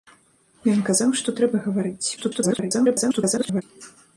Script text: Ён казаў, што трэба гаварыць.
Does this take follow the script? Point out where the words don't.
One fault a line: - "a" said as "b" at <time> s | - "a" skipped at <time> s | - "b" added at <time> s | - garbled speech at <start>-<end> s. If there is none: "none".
- garbled speech at 2.2-3.6 s